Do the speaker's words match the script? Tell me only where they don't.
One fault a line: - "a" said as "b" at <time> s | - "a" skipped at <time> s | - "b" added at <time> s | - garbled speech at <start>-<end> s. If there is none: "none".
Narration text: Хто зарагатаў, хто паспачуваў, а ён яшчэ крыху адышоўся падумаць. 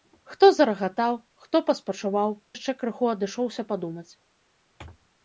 - "а ён" skipped at 2.3 s